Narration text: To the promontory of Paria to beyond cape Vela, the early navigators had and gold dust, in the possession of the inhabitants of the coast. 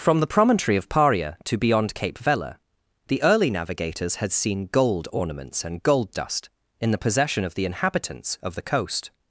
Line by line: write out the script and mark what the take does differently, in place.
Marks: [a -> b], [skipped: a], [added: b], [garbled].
[To -> From] the promontory of Paria to beyond cape Vela, the early navigators had [added: seen gold ornaments] and gold dust, in the possession of the inhabitants of the coast.